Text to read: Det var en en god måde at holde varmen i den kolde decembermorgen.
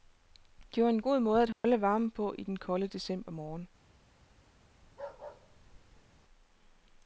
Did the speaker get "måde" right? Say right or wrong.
right